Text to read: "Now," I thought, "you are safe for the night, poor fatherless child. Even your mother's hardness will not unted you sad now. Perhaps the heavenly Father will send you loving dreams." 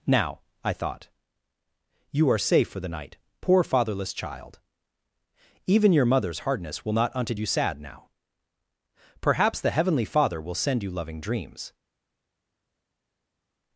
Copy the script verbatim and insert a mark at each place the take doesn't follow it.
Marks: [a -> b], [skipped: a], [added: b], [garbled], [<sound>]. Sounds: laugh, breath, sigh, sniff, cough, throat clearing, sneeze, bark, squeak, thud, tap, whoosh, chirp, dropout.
"Now," I thought, "you are safe for the night, poor fatherless child. Even your mother's hardness will not unted you sad now. Perhaps the heavenly Father will send you loving dreams."